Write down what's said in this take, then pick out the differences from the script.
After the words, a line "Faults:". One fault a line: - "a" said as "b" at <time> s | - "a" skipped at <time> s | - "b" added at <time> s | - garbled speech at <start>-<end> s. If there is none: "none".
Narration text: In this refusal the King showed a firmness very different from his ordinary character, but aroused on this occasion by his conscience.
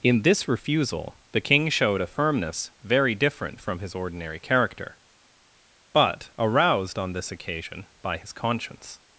In this refusal the King showed a firmness very different from his ordinary character, but aroused on this occasion by his conscience.
Faults:
none